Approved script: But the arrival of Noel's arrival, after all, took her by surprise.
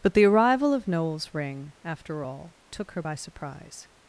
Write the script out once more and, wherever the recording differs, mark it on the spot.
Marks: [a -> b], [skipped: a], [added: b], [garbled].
But the arrival of Noel's [arrival, -> ring] after all, took her by surprise.